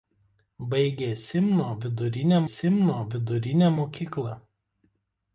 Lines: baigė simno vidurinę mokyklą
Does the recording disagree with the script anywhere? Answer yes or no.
yes